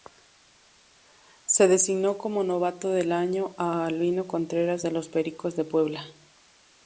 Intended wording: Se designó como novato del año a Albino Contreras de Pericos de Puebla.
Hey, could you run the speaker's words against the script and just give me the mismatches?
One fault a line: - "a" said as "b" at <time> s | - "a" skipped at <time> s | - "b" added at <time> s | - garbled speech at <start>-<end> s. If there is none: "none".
- "los" added at 4.9 s